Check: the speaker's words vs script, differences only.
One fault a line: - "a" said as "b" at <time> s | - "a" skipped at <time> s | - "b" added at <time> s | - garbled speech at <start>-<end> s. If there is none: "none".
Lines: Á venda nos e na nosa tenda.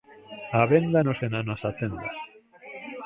none